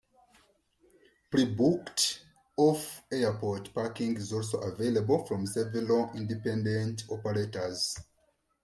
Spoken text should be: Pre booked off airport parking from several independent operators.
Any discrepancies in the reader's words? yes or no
yes